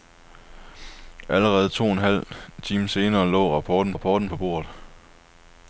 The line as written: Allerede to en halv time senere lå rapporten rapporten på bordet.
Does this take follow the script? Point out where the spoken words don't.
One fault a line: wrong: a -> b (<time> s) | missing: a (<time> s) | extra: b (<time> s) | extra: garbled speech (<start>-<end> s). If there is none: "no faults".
no faults